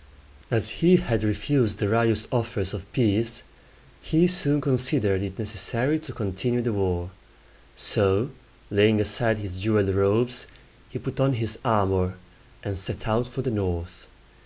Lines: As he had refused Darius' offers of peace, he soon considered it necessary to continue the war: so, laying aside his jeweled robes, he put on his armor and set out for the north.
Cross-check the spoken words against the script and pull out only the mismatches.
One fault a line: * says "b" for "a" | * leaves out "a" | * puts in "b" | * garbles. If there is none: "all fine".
all fine